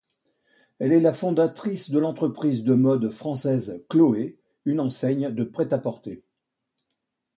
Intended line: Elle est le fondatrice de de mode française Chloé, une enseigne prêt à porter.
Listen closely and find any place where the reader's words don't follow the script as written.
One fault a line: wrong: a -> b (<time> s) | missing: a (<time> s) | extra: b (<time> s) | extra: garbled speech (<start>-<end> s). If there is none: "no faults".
wrong: le -> la (1.0 s)
extra: l'entreprise (2.0 s)
extra: de (5.3 s)